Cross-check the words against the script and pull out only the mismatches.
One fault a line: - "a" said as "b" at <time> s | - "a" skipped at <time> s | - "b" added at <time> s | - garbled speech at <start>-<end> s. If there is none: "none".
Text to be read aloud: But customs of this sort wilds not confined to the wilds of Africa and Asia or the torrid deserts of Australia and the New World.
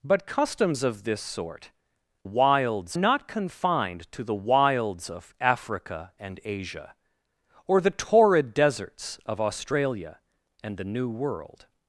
none